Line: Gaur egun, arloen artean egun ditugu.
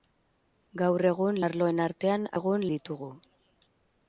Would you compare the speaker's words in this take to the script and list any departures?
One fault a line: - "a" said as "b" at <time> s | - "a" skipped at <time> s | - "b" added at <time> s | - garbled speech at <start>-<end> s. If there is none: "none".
none